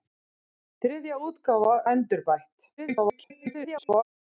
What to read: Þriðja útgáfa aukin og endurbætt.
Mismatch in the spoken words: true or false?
true